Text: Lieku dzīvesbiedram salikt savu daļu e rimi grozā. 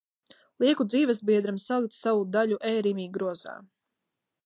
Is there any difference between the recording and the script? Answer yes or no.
no